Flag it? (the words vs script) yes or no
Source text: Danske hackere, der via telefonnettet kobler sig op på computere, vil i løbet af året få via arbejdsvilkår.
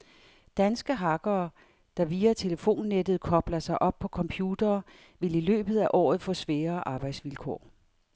yes